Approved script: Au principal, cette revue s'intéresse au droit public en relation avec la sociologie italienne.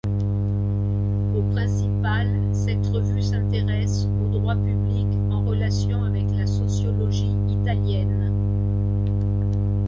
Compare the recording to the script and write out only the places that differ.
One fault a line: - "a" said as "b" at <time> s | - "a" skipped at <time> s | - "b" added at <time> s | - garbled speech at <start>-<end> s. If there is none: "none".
none